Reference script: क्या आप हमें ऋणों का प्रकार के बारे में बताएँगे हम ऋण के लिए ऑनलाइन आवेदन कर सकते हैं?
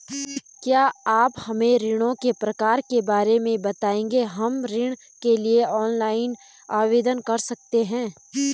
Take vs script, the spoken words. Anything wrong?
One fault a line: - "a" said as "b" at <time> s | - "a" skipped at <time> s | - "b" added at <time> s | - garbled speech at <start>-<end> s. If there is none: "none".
- "का" said as "के" at 2.1 s